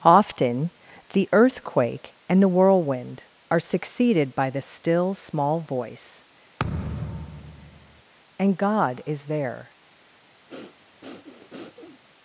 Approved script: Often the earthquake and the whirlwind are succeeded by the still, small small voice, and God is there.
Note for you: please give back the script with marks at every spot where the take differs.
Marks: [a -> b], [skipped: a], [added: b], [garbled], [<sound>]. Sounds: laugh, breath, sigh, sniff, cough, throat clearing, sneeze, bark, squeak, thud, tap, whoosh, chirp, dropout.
Often the earthquake and the whirlwind are succeeded by the still, small [skipped: small] voice, [thud] and God is there. [breath]